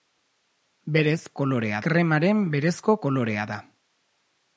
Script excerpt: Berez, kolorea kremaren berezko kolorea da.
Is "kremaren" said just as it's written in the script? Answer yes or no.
yes